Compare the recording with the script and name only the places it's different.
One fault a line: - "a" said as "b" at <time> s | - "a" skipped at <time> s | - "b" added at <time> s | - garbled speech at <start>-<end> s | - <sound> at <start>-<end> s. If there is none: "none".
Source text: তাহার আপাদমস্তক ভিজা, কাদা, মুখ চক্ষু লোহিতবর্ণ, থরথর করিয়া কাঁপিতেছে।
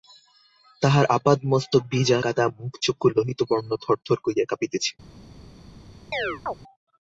- chirp at 6.1-6.5 s